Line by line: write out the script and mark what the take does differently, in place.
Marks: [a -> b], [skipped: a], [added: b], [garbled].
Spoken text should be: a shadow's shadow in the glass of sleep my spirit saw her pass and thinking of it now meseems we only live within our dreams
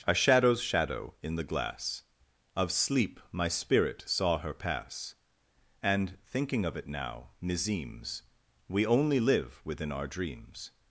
a shadow's shadow in the glass of sleep my spirit saw her pass and thinking of it now meseems we only live within our dreams